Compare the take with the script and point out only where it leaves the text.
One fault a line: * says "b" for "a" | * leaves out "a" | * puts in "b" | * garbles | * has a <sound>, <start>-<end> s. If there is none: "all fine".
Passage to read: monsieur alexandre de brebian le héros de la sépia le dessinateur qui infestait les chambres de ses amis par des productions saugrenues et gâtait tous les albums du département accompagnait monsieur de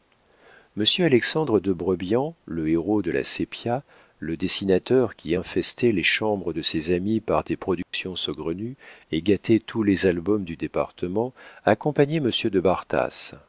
* has a dropout, 7.8-7.9 s